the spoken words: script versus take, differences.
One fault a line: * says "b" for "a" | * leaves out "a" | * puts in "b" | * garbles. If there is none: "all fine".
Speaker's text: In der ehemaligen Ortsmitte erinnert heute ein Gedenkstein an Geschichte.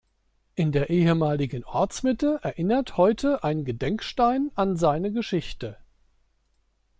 * puts in "seine"